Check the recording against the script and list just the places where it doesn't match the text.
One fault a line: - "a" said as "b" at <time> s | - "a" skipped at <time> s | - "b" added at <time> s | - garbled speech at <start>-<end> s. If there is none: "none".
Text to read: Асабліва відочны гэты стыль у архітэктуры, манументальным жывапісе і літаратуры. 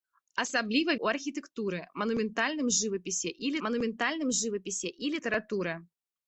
- "відочны гэты стыль у архітэктуры" said as "у архітэктуры манументальным жывапісе і" at 1.1 s